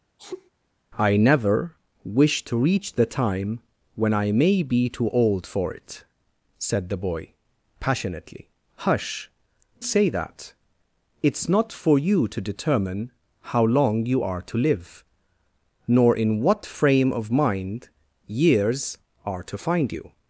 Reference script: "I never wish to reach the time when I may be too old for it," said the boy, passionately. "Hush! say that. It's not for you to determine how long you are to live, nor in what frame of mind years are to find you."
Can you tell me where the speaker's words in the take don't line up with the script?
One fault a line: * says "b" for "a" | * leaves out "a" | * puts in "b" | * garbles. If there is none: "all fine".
all fine